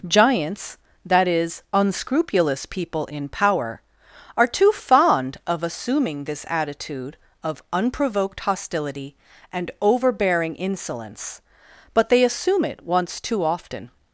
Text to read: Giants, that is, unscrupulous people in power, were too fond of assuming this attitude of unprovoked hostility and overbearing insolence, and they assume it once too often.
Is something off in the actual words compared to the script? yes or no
yes